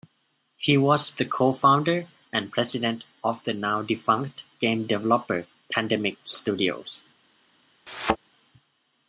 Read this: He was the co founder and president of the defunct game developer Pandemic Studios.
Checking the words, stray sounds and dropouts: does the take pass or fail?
fail